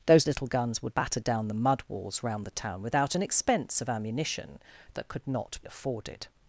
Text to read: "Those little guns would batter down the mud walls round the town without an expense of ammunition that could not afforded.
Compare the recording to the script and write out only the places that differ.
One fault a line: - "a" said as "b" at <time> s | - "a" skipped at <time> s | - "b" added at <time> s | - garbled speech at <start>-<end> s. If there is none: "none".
none